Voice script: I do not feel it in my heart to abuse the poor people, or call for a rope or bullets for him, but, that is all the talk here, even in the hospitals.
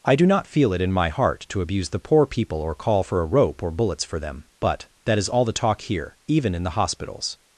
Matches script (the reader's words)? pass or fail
fail